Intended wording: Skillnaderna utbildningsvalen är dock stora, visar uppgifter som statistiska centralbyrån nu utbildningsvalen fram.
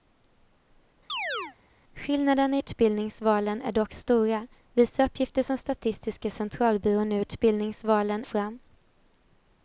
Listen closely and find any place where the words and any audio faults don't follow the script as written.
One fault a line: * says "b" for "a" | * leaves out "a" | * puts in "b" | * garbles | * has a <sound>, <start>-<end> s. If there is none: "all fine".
* has a chirp, 1.1-1.6 s